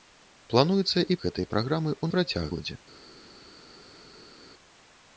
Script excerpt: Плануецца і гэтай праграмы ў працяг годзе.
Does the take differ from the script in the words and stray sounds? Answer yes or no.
no